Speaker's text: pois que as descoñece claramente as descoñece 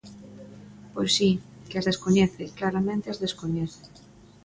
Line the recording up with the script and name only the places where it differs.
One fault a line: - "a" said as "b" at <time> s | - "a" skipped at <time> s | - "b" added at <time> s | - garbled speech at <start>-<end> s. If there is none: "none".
- "si" added at 1.2 s